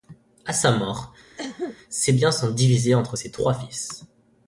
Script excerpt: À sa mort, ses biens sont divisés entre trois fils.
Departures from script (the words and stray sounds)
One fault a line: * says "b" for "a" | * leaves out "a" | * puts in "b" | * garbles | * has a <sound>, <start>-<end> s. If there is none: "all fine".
* has a cough, 1.4-1.8 s
* puts in "ses"